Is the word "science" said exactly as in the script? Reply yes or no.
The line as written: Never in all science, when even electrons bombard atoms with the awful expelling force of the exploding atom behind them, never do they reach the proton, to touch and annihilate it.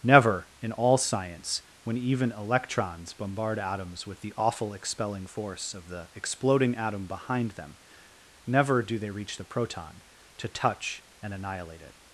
yes